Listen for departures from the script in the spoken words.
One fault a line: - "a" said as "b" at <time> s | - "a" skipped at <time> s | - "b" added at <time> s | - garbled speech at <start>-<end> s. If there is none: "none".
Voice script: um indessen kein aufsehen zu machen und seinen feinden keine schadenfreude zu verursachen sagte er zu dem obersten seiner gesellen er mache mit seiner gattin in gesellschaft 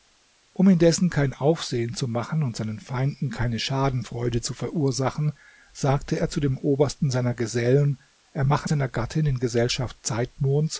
- "mit" skipped at 8.7 s